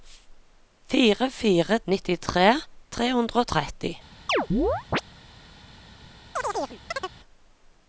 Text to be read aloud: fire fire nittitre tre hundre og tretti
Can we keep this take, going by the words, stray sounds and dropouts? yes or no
no